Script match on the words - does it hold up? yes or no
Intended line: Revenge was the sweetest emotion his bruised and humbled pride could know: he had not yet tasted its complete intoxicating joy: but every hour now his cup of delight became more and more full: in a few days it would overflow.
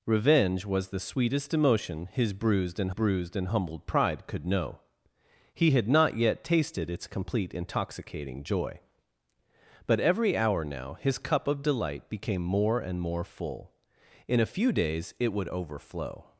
no